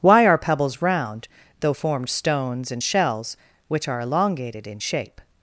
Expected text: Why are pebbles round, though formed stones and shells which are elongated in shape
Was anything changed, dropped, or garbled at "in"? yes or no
no